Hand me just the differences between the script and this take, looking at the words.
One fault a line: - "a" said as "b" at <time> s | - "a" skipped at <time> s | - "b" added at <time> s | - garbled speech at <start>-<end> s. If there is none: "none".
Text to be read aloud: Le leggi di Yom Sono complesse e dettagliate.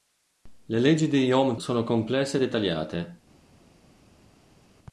none